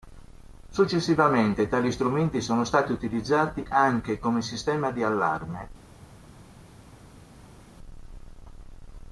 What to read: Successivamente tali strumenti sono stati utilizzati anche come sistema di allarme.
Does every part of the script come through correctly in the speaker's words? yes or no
yes